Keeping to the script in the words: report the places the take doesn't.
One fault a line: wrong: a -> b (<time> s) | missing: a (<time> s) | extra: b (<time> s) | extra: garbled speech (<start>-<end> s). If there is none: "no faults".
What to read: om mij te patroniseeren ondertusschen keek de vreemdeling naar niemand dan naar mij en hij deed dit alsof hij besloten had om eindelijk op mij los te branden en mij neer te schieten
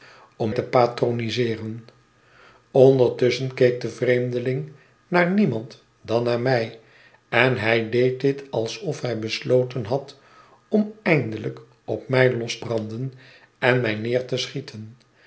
missing: mij (0.5 s)
missing: te (12.6 s)